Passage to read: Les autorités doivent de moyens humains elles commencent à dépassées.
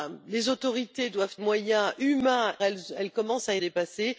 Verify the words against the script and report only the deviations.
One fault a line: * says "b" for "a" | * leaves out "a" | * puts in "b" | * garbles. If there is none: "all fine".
all fine